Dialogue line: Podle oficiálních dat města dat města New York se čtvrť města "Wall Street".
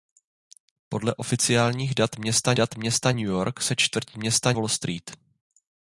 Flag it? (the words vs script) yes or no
no